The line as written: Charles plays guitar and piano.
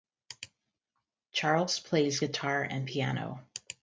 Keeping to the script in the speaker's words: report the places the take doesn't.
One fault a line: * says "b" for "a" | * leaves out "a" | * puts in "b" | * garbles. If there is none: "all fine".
all fine